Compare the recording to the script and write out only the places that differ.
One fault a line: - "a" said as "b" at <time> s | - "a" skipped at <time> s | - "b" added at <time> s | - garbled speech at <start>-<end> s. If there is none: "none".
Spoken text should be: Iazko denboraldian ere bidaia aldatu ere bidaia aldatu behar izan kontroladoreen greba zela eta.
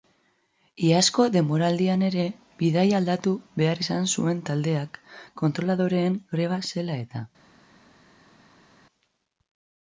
- "ere bidaia aldatu behar izan" said as "behar izan zuen taldeak" at 3.6 s